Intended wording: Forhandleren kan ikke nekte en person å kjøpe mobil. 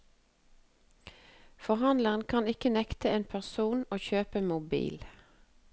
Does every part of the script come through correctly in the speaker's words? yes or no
yes